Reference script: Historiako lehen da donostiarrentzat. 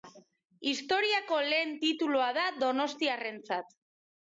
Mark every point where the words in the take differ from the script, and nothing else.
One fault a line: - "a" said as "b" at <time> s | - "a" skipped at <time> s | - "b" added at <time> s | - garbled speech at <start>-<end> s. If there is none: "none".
- "titulua" added at 1.8 s